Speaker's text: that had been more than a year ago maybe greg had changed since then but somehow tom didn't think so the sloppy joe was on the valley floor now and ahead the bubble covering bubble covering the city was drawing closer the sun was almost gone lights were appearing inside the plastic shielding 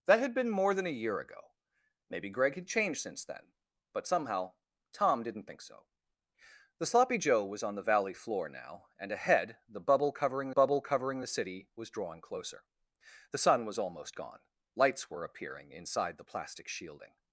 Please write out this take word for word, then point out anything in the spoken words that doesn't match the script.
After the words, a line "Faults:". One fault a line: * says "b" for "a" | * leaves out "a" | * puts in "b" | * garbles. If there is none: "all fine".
that had been more than a year ago maybe greg had changed since then but somehow tom didn't think so the sloppy joe was on the valley floor now and ahead the bubble covering bubble covering the city was drawing closer the sun was almost gone lights were appearing inside the plastic shielding
Faults:
all fine